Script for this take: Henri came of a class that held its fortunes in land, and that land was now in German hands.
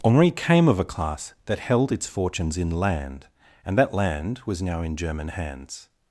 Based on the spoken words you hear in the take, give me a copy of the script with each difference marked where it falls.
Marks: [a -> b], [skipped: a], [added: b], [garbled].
Henri came of a class that held its fortunes in land, and that land was now in German hands.